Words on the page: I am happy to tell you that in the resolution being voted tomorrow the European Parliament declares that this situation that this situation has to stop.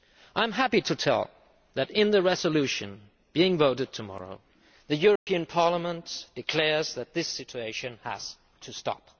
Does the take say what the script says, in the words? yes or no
no